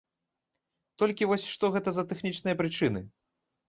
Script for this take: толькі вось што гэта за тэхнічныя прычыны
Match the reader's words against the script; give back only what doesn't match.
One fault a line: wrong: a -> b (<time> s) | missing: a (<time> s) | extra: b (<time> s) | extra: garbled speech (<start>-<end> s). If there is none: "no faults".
no faults